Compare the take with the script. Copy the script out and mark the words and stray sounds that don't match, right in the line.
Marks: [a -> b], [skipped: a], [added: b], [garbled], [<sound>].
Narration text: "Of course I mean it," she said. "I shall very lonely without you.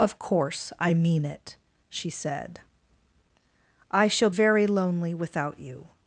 "Of course I mean it," she said. "I shall very lonely without you.